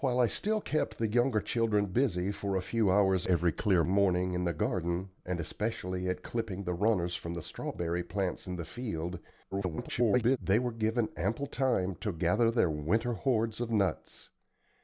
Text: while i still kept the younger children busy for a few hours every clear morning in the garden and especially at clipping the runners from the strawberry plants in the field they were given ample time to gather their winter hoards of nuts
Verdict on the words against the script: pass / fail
fail